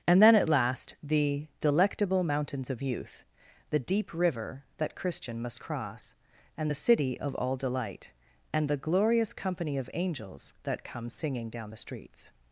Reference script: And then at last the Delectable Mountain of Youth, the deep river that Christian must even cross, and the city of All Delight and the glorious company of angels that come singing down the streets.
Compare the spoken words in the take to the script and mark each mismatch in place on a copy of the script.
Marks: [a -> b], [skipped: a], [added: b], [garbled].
And then at last the Delectable [Mountain -> Mountains] of Youth, the deep river that Christian must [skipped: even] cross, and the city of All Delight and the glorious company of angels that come singing down the streets.